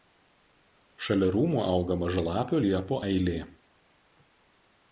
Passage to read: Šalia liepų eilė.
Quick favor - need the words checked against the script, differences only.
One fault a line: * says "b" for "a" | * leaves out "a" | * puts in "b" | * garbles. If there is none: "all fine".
* puts in "rūmų auga mažalapių"